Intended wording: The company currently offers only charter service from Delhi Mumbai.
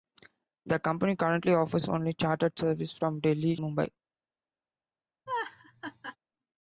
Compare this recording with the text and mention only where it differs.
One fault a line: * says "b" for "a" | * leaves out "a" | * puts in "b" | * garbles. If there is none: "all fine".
all fine